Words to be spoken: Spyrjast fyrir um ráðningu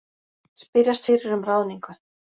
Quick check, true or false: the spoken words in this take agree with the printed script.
true